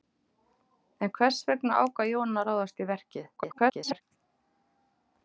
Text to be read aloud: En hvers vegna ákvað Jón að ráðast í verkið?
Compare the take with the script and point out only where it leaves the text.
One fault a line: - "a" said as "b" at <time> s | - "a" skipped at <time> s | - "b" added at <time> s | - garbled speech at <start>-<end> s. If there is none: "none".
- garbled speech at 3.4-4.0 s